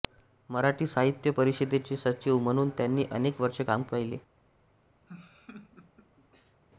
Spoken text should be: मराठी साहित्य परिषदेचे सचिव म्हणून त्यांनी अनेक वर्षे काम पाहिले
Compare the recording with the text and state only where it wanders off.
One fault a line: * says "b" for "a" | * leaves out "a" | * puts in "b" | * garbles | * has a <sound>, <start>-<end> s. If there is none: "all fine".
* has a laugh, 5.1-6.6 s